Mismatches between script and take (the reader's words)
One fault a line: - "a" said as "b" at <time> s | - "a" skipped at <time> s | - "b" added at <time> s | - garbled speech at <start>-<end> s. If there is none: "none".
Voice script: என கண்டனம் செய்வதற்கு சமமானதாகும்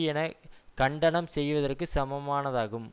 none